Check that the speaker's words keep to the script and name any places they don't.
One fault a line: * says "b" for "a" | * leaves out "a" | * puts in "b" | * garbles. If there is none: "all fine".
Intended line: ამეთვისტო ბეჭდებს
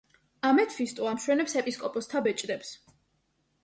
* puts in "ამშვენებს ეპისკოპოსთა"